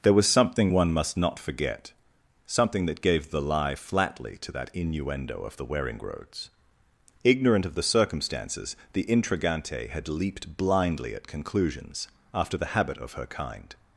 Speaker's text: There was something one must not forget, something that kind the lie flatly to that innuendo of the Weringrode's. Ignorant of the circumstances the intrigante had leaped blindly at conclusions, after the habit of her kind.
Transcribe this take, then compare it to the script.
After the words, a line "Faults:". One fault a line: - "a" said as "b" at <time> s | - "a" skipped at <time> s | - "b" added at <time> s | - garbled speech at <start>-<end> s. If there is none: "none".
There was something one must not forget, something that gave the lie flatly to that innuendo of the Weringrode's. Ignorant of the circumstances the intrigante had leaped blindly at conclusions, after the habit of her kind.
Faults:
- "kind" said as "gave" at 3.0 s